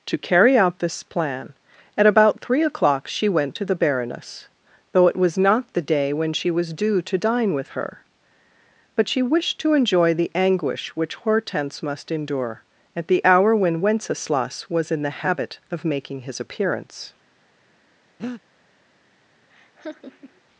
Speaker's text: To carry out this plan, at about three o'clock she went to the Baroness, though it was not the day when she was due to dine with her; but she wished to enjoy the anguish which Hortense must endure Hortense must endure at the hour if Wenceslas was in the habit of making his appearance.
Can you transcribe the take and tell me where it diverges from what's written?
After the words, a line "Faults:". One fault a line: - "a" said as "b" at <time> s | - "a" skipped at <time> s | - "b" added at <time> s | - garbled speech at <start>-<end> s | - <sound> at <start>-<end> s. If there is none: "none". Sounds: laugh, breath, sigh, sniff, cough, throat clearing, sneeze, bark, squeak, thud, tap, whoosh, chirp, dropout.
To carry out this plan, at about three o'clock she went to the Baroness, though it was not the day when she was due to dine with her; but she wished to enjoy the anguish which Hortense must endure at the hour when Wenceslas was in the habit of making his appearance.
Faults:
- "Hortense must endure" skipped at 12.6 s
- "if" said as "when" at 13.5 s
- breath at 18.2-18.4 s
- laugh at 19.5-20.4 s